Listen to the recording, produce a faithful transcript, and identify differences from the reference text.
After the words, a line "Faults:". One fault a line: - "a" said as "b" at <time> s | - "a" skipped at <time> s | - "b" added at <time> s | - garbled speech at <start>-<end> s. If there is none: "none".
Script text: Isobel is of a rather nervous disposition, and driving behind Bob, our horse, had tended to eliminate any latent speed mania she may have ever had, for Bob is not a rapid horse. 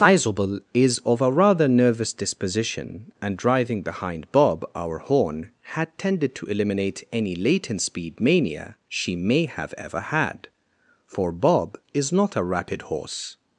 Isobel is of a rather nervous disposition, and driving behind Bob, our horn, had tended to eliminate any latent speed mania she may have ever had, for Bob is not a rapid horse.
Faults:
- "horse" said as "horn" at 5.0 s